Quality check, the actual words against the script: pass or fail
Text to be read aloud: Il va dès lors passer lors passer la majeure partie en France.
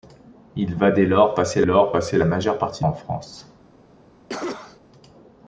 pass